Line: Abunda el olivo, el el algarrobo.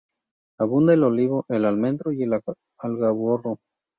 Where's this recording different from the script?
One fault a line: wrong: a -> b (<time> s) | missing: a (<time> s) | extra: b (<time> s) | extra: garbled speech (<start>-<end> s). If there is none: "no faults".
extra: almendro y (1.6 s)